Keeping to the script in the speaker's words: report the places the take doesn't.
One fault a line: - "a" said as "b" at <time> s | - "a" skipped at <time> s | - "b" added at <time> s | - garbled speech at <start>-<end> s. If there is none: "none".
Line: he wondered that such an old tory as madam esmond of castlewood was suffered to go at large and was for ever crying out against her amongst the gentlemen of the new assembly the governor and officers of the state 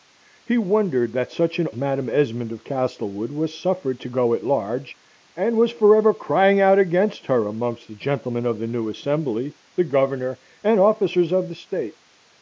- "old tory as" skipped at 1.7 s